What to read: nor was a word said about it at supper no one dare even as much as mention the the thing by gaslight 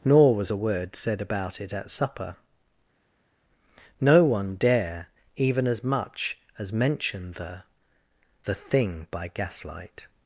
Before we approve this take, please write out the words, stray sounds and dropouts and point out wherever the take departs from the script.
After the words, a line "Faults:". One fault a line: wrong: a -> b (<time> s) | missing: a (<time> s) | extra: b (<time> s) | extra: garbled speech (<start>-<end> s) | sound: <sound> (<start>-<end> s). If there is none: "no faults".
nor was a word said about it at supper no one dare even as much as mention the the thing by gaslight
Faults:
no faults